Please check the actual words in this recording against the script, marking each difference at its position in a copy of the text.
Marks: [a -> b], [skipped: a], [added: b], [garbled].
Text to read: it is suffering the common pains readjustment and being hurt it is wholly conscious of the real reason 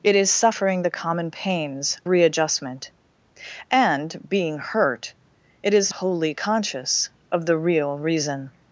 it is suffering the common pains readjustment and being hurt it is wholly conscious of the real reason